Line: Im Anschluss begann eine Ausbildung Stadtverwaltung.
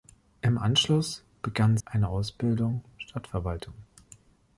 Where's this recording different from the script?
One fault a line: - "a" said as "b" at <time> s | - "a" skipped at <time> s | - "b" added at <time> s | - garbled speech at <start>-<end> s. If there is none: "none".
none